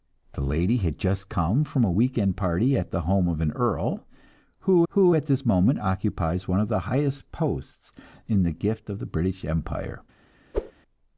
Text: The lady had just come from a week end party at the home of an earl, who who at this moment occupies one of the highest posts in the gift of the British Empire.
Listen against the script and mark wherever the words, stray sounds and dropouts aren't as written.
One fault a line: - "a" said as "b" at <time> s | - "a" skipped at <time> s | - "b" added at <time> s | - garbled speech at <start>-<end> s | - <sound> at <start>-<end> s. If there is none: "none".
- whoosh at 10.5-10.7 s